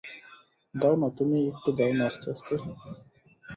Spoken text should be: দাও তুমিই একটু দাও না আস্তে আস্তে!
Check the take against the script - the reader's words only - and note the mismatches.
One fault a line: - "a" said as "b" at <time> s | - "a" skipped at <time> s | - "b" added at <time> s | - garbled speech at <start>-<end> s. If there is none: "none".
- "না" added at 0.9 s